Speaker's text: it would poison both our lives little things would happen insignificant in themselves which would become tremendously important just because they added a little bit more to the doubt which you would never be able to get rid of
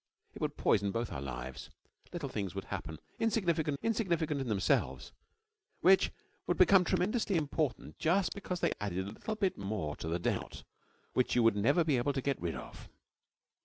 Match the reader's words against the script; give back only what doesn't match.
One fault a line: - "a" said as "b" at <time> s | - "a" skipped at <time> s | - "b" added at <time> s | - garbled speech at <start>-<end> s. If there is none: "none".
- "insignificant" added at 3.8 s